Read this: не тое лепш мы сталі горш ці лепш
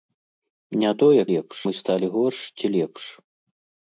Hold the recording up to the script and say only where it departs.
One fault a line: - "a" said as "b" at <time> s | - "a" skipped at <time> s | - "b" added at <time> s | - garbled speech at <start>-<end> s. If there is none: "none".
none